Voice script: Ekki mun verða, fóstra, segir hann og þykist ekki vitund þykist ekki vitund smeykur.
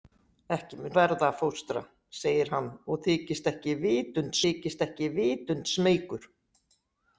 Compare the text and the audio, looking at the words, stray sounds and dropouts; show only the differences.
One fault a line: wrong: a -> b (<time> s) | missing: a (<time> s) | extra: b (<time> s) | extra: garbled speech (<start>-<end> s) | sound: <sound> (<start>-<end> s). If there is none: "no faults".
no faults